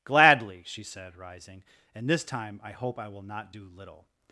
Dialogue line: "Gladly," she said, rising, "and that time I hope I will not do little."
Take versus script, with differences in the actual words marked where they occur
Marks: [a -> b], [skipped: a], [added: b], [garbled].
"Gladly," she said, rising, "and [that -> this] time I hope I will not do little."